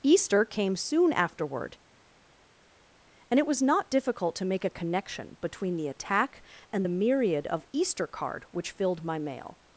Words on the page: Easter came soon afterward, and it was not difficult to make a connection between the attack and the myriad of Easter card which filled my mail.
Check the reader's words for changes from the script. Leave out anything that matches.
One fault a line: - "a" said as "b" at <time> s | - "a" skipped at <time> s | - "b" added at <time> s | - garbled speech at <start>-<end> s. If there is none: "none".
none